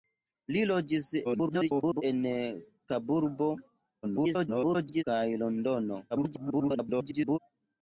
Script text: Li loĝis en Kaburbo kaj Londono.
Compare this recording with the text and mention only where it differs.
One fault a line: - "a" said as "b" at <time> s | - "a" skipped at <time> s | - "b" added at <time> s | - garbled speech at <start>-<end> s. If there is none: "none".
- garbled speech at 1.2-2.0 s
- garbled speech at 4.0-5.0 s
- garbled speech at 6.1-7.4 s